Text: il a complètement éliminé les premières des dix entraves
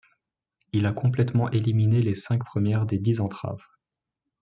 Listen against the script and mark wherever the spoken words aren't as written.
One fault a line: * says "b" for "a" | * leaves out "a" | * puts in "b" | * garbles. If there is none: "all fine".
* puts in "cinq"